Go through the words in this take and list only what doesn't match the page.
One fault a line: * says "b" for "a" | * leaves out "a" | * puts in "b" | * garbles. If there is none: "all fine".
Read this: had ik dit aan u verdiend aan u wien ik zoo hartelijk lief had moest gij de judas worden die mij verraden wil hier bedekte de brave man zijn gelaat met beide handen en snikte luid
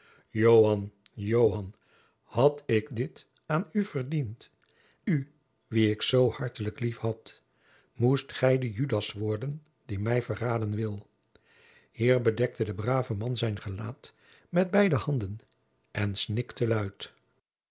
* leaves out "aan"